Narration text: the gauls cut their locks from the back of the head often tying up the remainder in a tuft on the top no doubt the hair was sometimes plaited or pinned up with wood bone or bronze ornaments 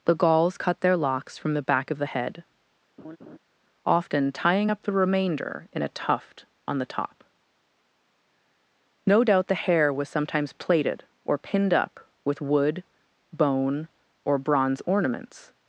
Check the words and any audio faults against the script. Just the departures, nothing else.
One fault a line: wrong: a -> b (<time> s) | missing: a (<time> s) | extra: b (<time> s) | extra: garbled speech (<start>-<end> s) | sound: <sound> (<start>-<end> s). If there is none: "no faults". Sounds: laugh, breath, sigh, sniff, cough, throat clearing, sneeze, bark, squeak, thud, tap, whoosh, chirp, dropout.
sound: laugh (3.0-3.4 s)